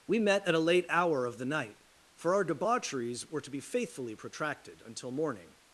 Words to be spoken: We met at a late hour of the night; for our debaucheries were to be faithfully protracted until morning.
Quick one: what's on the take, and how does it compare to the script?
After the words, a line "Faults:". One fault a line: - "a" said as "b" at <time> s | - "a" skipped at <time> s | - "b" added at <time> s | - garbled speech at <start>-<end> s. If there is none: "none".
We met at a late hour of the night; for our debaucheries were to be faithfully protracted until morning.
Faults:
none